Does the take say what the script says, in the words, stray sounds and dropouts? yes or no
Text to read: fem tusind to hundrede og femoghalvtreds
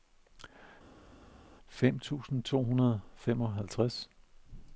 yes